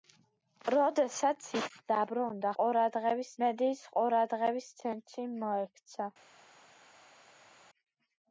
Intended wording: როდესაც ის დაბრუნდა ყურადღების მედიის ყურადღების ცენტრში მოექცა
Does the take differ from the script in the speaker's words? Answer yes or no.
no